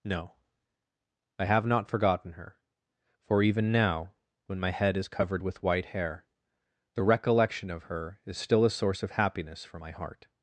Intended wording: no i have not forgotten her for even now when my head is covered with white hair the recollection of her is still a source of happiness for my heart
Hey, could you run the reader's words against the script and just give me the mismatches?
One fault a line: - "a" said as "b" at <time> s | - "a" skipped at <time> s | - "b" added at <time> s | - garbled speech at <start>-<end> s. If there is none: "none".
none